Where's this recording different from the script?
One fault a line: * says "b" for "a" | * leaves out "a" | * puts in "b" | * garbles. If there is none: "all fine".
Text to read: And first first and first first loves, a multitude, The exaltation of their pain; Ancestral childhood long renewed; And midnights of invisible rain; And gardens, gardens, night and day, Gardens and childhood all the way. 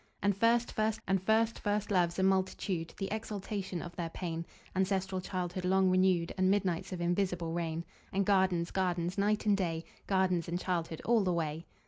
all fine